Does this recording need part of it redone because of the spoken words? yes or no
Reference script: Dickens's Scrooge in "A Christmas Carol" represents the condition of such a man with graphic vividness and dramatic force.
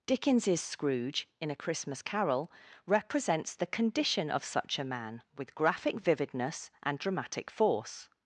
no